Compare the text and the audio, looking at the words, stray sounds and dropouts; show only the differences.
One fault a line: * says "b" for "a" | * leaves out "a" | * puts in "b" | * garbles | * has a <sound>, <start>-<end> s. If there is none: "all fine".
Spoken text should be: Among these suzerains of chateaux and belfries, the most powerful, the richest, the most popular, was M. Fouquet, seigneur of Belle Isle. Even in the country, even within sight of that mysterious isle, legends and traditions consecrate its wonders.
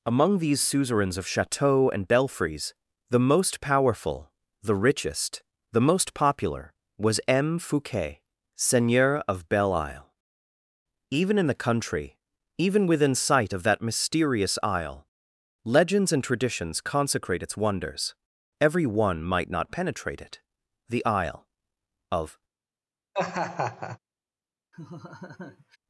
* puts in "Every one might not penetrate it the isle of"
* has a laugh, 23.1-24.0 s
* has a laugh, 24.7-25.8 s